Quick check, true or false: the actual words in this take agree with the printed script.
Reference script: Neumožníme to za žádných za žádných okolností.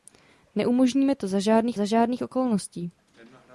true